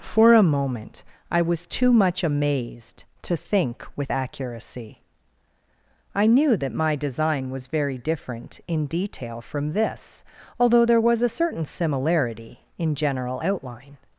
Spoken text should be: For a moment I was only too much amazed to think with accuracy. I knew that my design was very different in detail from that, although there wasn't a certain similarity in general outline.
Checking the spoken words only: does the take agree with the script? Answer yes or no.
no